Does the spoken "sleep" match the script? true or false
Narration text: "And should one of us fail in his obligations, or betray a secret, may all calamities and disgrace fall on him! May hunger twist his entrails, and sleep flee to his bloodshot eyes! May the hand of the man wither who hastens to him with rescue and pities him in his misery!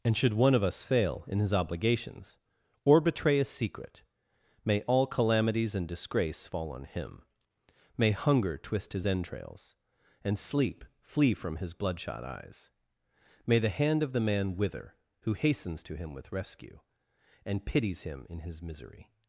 true